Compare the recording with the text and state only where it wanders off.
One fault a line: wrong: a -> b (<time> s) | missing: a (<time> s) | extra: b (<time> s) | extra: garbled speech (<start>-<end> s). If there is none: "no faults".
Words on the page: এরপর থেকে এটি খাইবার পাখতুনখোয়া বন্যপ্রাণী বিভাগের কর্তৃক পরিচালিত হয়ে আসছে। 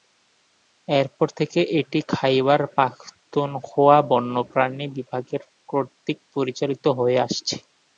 no faults